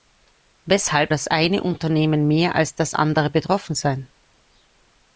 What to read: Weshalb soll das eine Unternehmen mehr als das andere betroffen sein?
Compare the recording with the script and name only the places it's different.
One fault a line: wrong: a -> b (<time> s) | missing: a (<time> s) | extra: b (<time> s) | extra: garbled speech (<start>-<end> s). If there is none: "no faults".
missing: soll (1.1 s)